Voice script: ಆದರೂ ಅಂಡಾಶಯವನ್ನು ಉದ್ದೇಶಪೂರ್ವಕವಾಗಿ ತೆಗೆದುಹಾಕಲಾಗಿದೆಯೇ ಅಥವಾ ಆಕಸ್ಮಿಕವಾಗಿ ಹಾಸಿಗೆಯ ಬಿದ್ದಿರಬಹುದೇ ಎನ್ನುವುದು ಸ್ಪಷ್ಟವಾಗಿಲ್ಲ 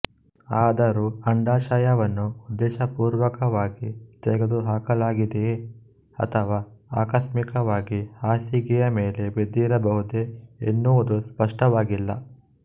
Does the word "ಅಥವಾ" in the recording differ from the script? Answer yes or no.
no